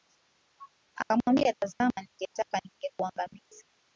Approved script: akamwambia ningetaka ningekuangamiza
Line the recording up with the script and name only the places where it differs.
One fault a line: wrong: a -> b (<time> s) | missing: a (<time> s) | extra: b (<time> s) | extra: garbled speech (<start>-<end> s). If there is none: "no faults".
extra: tazama (1.6 s)